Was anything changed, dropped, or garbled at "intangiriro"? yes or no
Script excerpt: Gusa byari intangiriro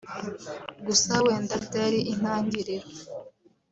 no